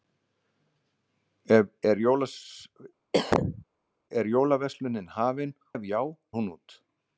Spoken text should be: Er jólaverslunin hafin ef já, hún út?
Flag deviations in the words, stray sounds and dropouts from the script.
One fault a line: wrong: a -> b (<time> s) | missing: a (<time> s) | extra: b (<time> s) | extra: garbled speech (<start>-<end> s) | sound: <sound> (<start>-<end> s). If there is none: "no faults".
sound: cough (3.1-3.6 s)